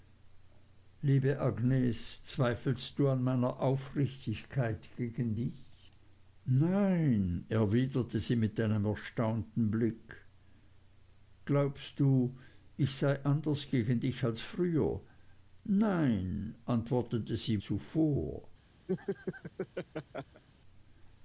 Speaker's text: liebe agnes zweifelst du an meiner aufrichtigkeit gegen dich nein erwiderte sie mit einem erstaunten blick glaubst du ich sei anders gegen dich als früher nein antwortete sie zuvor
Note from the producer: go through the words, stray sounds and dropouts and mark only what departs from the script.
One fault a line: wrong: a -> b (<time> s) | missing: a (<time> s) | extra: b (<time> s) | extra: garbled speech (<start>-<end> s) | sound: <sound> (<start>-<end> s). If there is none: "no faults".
sound: laugh (18.9-20.4 s)